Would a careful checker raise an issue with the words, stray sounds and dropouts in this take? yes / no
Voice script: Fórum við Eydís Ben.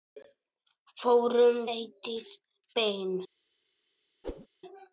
yes